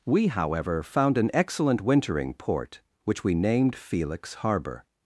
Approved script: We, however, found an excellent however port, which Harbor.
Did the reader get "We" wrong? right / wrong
right